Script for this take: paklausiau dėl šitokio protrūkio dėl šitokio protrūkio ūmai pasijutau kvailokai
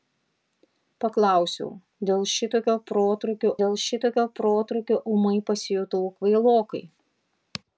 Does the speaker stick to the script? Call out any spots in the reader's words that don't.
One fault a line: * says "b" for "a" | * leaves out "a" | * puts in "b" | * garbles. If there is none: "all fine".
all fine